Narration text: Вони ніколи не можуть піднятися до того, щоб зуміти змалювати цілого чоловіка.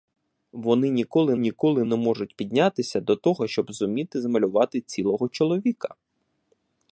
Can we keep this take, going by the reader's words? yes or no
no